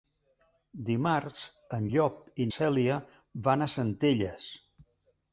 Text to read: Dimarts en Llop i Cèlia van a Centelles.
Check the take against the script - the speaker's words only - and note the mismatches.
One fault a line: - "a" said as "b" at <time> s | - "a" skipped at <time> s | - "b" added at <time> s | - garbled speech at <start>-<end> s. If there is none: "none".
none